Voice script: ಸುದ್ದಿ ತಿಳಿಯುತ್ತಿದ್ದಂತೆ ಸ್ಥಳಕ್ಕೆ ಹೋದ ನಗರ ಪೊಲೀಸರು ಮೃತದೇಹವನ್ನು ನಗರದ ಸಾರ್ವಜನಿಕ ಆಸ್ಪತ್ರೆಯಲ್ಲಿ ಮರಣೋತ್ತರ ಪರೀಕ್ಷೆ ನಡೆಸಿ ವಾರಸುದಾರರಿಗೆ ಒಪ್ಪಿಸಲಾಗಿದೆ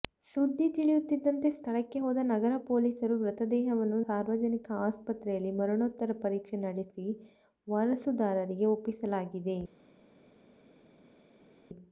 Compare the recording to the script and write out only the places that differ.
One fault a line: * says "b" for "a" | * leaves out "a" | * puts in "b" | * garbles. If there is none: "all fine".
* leaves out "ನಗರದ"